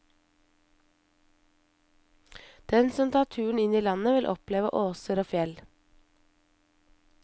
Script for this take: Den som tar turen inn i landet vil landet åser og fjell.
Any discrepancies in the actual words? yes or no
yes